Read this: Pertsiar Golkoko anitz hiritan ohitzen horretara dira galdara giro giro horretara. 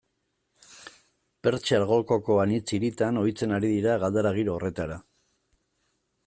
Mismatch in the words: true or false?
true